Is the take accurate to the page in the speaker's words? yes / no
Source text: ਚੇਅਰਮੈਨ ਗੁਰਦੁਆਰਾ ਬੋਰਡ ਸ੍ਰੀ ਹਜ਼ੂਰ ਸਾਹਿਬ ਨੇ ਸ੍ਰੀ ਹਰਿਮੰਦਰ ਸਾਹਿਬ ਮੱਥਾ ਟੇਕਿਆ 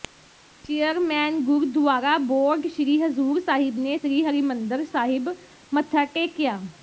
yes